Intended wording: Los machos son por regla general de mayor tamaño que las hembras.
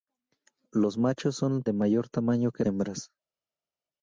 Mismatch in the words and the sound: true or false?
true